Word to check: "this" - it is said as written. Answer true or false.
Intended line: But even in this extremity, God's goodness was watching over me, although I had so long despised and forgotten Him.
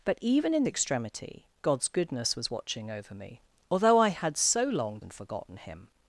false